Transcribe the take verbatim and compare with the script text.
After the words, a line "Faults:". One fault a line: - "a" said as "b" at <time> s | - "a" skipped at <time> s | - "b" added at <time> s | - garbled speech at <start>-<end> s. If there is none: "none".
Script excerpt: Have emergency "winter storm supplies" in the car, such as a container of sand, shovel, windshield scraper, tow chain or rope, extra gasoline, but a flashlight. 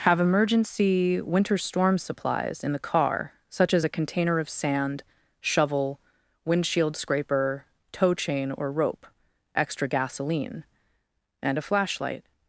Have emergency "winter storm supplies" in the car, such as a container of sand, shovel, windshield scraper, tow chain or rope, extra gasoline, and a flashlight.
Faults:
- "but" said as "and" at 11.4 s